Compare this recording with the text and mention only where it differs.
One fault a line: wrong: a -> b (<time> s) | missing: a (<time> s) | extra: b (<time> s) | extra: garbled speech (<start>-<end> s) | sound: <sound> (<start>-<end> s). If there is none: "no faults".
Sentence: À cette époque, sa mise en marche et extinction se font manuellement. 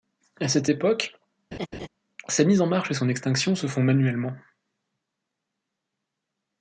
sound: laugh (1.5-1.9 s)
extra: son (2.9 s)